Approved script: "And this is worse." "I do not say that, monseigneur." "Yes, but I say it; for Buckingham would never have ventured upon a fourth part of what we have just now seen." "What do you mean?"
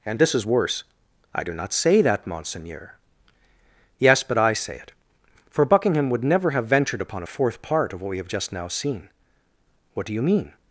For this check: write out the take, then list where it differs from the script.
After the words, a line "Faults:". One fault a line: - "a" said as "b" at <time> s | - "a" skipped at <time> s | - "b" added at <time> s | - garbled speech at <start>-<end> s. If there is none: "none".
"And this is worse." "I do not say that, monseigneur." "Yes, but I say it; for Buckingham would never have ventured upon a fourth part of what we have just now seen." "What do you mean?"
Faults:
none